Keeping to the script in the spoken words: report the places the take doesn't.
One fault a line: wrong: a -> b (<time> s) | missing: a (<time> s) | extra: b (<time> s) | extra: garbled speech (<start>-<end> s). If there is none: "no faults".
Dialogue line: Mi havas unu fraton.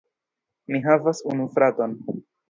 no faults